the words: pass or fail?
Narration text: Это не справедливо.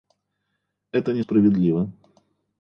pass